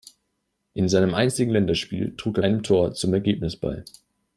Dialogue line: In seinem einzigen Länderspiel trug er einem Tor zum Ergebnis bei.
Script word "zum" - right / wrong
right